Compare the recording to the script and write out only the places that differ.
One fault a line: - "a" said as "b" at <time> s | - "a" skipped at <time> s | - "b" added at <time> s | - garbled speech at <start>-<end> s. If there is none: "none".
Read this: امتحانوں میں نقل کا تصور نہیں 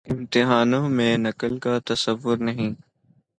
none